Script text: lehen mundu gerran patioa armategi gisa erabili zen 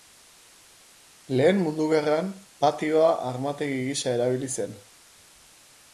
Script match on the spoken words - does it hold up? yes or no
yes